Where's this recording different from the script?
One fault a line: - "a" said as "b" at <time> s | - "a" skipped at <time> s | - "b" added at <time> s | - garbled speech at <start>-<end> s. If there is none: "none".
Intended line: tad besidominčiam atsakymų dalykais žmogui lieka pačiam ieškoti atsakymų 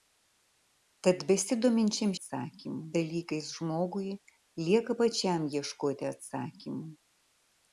none